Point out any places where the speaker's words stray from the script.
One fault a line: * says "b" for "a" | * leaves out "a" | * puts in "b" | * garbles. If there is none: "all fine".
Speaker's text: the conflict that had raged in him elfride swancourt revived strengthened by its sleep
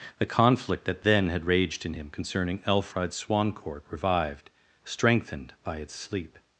* puts in "then"
* puts in "concerning"